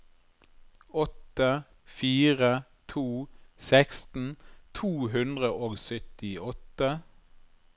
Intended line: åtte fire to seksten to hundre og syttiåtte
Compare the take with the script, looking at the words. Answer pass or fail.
pass